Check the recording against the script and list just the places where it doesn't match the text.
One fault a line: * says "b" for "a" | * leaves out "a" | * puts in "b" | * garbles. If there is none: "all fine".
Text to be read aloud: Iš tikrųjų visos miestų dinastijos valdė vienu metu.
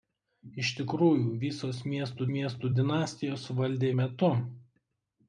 * puts in "miestų"
* leaves out "vienu"